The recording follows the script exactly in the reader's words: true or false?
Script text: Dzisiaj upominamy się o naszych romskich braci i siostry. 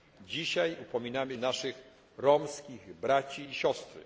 false